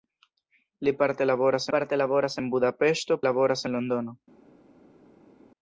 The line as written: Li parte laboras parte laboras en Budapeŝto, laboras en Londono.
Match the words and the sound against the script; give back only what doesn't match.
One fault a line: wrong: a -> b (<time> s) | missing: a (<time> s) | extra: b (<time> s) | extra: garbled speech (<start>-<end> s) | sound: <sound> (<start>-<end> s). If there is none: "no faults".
no faults